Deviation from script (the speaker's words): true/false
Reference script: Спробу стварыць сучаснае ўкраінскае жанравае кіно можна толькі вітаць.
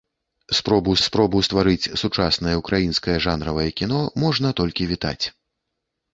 true